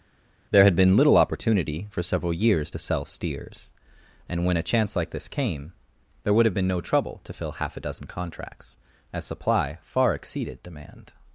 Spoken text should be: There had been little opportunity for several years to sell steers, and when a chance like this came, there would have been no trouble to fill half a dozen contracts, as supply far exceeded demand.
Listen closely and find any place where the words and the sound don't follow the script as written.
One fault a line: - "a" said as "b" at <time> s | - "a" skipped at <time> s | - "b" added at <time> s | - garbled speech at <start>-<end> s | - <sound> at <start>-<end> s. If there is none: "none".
none